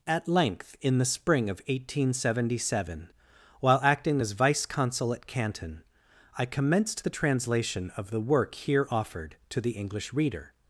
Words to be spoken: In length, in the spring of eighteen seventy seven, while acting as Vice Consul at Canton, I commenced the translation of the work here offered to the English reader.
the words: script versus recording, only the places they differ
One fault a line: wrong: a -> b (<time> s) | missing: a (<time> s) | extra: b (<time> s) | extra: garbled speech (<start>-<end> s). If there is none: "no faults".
wrong: In -> At (0.1 s)